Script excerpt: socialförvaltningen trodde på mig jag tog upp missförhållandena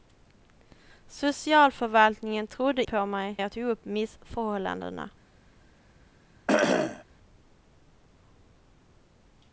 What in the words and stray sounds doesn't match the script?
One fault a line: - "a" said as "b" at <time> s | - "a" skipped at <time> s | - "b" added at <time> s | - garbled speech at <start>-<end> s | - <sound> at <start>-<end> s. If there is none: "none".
- cough at 6.5-7.0 s